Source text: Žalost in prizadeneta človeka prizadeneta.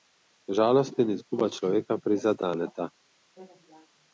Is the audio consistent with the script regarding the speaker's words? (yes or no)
no